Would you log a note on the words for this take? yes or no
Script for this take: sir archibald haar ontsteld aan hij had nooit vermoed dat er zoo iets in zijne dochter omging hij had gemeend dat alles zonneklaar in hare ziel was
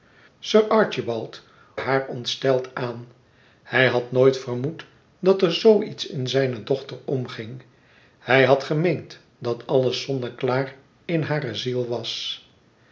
no